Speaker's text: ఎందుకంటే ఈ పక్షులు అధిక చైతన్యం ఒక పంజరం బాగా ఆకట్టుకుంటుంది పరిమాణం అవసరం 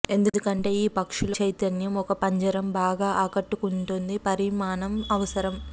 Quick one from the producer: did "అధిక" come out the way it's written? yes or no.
no